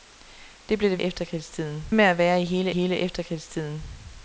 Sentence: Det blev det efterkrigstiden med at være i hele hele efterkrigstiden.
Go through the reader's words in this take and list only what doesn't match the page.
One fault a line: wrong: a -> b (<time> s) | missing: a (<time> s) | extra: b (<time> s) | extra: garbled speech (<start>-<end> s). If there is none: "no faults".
no faults